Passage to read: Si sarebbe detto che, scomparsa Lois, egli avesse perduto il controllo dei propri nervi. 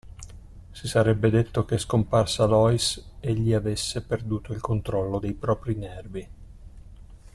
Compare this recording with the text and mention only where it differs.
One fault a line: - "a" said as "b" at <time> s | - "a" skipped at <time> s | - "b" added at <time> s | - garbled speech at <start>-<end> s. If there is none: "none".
none